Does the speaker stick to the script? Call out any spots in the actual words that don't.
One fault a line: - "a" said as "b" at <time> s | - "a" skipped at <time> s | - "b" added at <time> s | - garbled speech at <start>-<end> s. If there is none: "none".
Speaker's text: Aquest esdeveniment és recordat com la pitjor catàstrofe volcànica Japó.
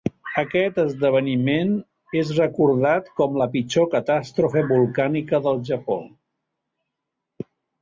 - "del" added at 5.5 s